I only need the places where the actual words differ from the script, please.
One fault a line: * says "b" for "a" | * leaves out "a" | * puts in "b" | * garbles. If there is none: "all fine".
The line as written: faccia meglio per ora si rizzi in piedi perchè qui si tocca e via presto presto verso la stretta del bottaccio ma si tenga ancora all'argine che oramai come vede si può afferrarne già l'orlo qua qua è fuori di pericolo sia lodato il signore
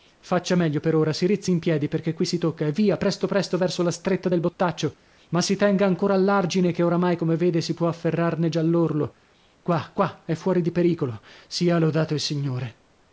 all fine